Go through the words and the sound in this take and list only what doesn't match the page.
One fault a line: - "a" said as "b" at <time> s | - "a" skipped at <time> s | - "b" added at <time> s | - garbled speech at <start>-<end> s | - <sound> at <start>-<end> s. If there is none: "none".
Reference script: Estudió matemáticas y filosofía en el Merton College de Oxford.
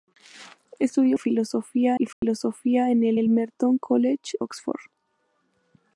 - "matemáticas" said as "filosofía" at 1.1 s
- dropout at 2.1-2.2 s
- "el" added at 3.1 s
- "de" skipped at 4.4 s